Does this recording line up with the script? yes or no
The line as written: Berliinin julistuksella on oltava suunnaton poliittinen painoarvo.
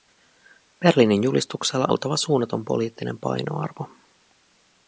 no